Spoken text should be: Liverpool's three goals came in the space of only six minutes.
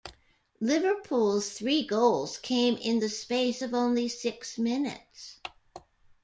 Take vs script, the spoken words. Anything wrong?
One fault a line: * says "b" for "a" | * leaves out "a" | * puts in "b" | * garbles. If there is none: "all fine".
all fine